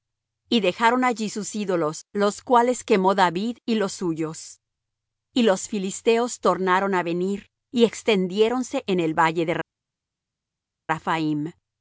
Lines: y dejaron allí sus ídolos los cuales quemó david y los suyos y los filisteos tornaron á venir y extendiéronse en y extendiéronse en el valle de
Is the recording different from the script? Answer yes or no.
yes